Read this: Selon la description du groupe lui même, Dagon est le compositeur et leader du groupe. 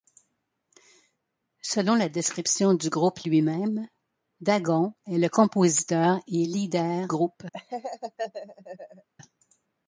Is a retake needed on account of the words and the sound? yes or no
yes